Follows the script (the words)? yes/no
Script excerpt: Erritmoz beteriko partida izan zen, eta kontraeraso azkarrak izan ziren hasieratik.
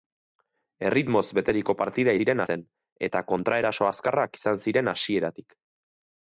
no